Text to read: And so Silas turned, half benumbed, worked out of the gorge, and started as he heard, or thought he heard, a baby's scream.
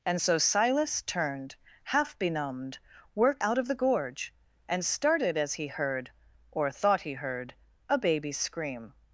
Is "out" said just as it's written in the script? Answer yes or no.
yes